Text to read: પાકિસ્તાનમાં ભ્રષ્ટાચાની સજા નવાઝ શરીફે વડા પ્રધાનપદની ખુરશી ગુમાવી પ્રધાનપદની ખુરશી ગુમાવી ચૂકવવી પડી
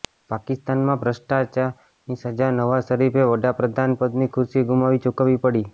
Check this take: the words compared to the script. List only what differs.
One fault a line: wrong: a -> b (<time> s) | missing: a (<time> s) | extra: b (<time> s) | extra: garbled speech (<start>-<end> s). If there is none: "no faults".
missing: પ્રધાનપદની ખુરશી ગુમાવી (5.0 s)